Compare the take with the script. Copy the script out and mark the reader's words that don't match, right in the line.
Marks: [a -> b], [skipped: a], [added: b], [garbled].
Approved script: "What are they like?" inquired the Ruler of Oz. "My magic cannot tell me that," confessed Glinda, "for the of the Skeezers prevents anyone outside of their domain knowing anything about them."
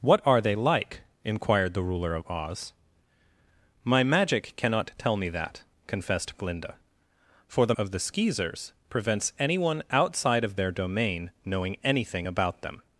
"What are they like?" inquired the Ruler of Oz. "My magic cannot tell me that," confessed Glinda, "for the of the Skeezers prevents anyone outside of their domain knowing anything about them."